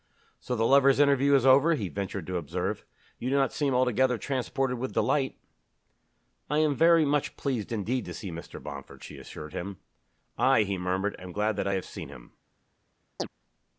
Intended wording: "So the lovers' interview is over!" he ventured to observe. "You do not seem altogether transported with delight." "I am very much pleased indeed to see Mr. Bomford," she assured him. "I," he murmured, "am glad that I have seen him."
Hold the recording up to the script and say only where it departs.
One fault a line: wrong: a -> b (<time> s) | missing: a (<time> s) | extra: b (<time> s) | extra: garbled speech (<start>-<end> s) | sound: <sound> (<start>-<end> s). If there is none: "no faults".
sound: chirp (13.2-13.3 s)